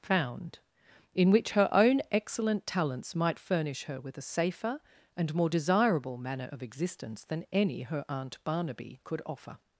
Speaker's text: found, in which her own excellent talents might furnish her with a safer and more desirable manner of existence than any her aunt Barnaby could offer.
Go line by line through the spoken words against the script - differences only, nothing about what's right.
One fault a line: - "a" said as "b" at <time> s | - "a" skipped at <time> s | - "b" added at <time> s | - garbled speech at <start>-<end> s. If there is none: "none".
none